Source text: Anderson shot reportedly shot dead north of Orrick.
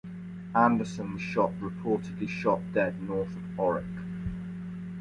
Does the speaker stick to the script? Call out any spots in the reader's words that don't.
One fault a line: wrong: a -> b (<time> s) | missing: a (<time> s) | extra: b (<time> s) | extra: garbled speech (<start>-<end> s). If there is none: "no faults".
no faults